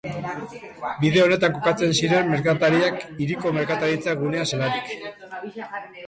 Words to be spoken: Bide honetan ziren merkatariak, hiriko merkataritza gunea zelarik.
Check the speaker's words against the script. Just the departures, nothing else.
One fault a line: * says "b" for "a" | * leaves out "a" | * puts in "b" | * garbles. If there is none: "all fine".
* puts in "kokatzen"